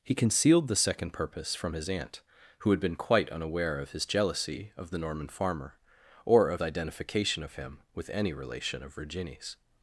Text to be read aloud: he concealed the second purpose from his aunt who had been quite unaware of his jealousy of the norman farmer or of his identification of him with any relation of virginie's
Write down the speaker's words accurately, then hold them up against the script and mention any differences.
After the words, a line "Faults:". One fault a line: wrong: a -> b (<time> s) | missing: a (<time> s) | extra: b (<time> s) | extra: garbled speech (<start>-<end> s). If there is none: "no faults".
he concealed the second purpose from his aunt who had been quite unaware of his jealousy of the norman farmer or of identification of him with any relation of virginie's
Faults:
missing: his (6.6 s)